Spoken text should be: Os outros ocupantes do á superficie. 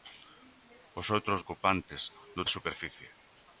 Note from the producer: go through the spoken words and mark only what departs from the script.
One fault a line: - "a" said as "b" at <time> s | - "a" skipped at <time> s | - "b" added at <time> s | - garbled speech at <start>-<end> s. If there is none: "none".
none